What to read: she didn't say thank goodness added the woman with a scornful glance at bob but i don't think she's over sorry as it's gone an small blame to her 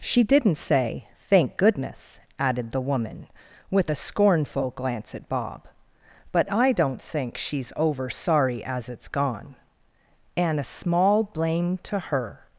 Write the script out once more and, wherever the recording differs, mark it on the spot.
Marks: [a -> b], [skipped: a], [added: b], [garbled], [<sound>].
she didn't say thank goodness added the woman with a scornful glance at bob but i don't think she's over sorry as it's gone [an -> and a] small blame to her